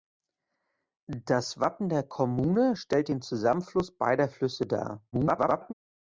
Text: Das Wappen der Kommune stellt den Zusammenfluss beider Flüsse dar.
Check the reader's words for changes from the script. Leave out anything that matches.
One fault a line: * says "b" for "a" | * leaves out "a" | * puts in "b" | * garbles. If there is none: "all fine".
* garbles